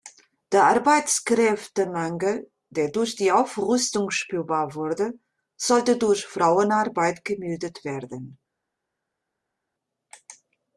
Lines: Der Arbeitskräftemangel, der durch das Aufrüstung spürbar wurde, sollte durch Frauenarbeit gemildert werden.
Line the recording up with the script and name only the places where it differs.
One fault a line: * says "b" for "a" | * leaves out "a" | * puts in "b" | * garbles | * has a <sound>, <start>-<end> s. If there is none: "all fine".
* says "die" for "das"